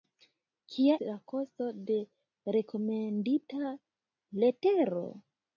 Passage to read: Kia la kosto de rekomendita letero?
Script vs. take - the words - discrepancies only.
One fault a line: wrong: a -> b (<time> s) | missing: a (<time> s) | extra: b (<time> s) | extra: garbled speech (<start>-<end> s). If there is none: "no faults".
no faults